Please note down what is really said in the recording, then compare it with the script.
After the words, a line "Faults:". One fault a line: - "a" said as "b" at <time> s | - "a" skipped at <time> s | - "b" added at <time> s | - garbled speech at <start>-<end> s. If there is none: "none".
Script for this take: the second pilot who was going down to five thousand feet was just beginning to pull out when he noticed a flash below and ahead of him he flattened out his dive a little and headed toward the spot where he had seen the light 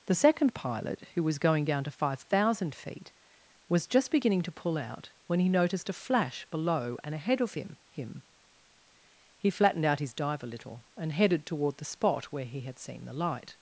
the second pilot who was going down to five thousand feet was just beginning to pull out when he noticed a flash below and ahead of him him he flattened out his dive a little and headed toward the spot where he had seen the light
Faults:
- "him" added at 7.9 s